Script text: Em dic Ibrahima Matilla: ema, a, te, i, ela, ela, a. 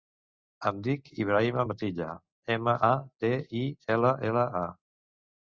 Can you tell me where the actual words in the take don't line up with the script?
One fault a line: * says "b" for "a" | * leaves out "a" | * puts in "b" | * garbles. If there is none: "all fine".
all fine